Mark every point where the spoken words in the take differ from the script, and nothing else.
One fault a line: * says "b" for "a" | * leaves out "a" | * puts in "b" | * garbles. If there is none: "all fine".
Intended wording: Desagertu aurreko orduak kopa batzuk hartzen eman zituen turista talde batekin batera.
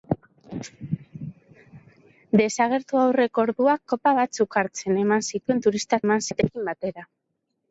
* says "eman" for "talde"